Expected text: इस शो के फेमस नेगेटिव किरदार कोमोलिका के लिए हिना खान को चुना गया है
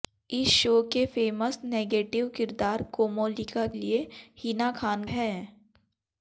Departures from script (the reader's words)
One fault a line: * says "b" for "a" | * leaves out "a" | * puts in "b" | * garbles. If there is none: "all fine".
* leaves out "के"
* leaves out "को चुना गया"